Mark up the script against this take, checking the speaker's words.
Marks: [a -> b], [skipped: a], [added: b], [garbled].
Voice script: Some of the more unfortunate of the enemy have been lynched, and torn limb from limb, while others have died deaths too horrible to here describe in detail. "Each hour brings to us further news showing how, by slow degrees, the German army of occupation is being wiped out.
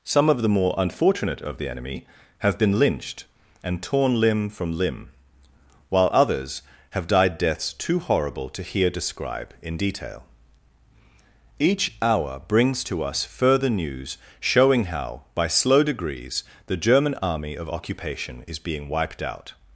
Some of the more unfortunate of the enemy have been lynched, and torn limb from limb, while others have died deaths too horrible to here describe in detail. "Each hour brings to us further news showing how, by slow degrees, the German army of occupation is being wiped out.